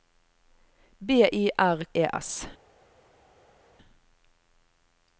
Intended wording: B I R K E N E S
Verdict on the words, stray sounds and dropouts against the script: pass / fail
fail